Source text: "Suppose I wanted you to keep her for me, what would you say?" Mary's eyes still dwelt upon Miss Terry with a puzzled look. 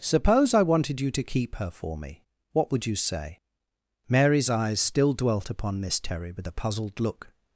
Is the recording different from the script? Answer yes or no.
no